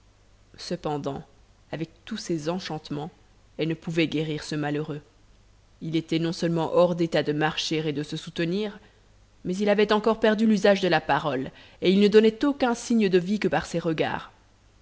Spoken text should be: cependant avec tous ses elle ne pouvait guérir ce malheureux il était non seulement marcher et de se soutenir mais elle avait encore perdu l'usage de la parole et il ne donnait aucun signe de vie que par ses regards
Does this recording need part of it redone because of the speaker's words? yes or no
yes